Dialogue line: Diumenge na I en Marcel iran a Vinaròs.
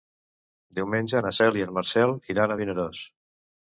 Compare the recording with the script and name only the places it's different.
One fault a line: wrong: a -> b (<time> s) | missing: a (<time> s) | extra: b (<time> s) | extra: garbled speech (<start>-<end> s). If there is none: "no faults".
extra: Cel (1.4 s)